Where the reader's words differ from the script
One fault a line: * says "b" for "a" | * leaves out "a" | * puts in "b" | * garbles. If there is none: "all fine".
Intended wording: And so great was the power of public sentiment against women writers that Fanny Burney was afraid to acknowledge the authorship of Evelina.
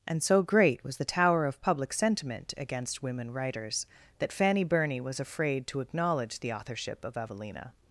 * says "tower" for "power"